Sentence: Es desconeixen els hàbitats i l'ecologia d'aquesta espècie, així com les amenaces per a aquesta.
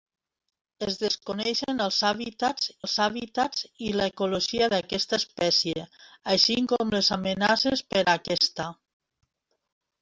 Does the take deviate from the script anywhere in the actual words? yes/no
yes